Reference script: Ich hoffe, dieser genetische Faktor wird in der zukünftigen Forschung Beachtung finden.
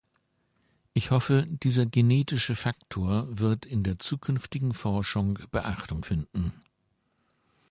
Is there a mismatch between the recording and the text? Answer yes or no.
no